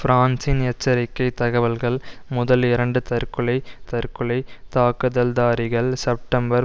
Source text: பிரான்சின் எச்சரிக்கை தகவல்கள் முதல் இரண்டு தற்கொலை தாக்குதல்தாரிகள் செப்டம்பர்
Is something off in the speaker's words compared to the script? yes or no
yes